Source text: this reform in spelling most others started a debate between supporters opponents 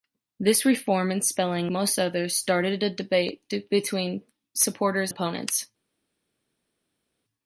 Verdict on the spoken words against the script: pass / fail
pass